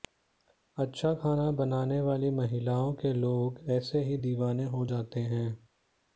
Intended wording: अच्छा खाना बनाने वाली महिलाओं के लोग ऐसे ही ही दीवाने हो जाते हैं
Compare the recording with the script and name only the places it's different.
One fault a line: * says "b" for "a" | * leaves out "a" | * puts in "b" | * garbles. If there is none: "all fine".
* leaves out "ही"